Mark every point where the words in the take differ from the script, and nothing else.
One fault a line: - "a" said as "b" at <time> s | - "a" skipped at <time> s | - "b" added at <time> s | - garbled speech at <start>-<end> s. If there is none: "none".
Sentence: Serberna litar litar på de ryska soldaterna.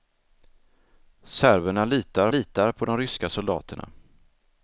none